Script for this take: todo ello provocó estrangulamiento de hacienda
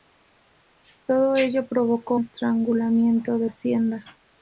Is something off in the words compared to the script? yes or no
no